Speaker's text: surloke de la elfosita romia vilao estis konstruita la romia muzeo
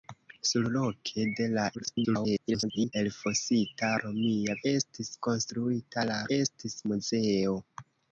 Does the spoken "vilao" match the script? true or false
false